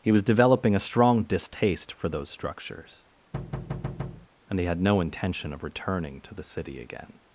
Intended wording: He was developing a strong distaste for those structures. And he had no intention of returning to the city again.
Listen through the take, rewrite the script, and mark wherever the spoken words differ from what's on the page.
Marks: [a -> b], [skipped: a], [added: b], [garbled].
He was developing a strong distaste for those structures. And he had no intention of returning to the city again.